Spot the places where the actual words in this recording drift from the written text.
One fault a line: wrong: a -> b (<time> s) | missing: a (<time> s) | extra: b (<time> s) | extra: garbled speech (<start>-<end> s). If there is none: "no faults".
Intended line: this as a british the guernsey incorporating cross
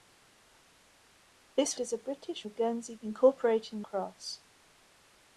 no faults